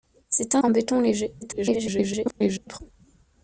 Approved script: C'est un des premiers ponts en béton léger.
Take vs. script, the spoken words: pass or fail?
fail